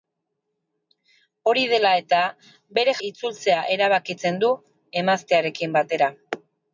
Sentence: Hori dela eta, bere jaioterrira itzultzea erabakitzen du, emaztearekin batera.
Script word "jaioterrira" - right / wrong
wrong